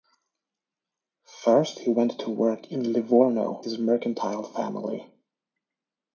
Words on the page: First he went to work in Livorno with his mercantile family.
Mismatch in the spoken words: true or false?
true